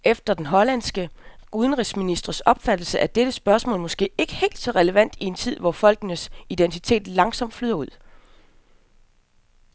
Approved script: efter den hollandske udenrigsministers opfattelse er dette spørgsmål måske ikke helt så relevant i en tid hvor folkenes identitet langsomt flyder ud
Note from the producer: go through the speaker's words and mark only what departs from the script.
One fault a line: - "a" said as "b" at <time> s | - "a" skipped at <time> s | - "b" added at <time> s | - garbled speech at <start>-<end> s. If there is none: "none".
none